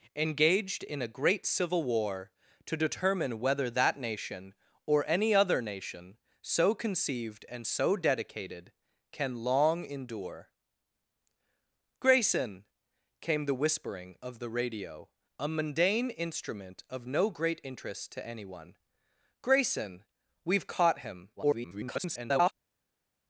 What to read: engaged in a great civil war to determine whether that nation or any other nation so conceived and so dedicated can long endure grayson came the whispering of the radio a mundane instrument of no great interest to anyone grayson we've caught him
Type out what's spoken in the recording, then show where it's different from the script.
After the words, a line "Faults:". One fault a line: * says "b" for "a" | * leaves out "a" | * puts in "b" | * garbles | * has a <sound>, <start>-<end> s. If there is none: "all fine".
engaged in a great civil war to determine whether that nation or any other nation so conceived and so dedicated can long endure grayson came the whispering of the radio a mundane instrument of no great interest to anyone grayson we've caught him [garbled]
Faults:
* garbles